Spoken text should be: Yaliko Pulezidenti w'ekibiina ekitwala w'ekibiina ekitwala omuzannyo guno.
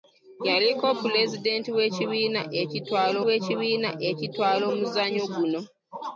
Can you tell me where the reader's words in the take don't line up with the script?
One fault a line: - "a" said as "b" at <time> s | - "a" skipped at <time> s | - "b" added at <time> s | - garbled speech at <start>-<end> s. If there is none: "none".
none